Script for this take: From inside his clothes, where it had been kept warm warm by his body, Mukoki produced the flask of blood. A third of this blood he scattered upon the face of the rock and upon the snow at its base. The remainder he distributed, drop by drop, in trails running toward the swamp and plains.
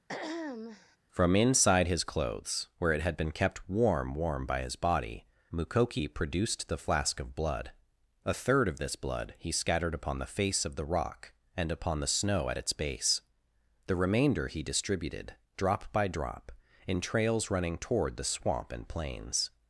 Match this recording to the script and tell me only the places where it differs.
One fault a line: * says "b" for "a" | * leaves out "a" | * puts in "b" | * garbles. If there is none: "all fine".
all fine